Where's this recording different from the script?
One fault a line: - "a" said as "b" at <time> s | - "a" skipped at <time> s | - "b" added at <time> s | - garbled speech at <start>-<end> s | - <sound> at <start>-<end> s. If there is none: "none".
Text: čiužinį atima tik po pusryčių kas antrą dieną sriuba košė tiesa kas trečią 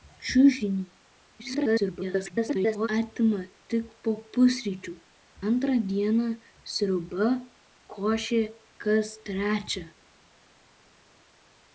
- garbled speech at 1.4-2.9 s
- "kas" skipped at 4.9 s
- "tiesa" skipped at 8.4 s